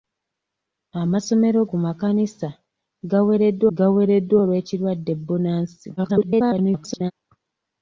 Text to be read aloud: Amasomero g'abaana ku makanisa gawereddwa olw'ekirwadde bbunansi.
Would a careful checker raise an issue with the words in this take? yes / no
yes